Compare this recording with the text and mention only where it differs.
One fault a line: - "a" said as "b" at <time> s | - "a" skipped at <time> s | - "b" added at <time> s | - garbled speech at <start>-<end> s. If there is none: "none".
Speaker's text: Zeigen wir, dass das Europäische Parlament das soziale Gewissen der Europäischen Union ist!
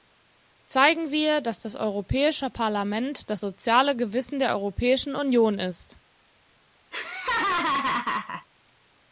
none